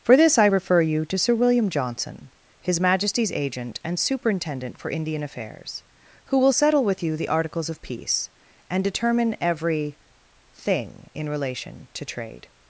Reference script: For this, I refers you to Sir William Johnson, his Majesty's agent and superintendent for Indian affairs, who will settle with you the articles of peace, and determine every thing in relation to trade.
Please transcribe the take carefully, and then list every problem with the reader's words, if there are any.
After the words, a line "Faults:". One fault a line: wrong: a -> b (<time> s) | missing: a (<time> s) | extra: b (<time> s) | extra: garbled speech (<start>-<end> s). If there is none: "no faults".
For this, I refer you to Sir William Johnson, his Majesty's agent and superintendent for Indian affairs, who will settle with you the articles of peace, and determine every thing in relation to trade.
Faults:
wrong: refers -> refer (0.4 s)